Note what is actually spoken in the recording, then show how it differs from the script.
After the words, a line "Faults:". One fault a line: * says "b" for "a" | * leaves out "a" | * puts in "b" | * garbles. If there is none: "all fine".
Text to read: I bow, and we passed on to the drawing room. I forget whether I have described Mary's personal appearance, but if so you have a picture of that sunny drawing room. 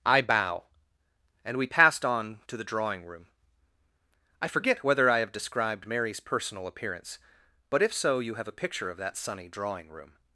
I bow, and we passed on to the drawing room. I forget whether I have described Mary's personal appearance, but if so you have a picture of that sunny drawing room.
Faults:
all fine